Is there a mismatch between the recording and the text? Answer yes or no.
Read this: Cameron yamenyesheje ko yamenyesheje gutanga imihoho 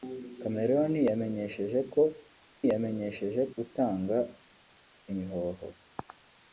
no